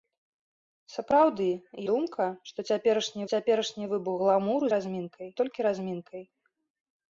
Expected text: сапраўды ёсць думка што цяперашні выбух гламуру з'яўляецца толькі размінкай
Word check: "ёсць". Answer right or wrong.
wrong